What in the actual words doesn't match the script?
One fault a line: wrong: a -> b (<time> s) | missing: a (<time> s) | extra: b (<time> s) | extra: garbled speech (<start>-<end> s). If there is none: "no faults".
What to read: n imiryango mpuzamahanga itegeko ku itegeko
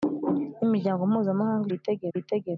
no faults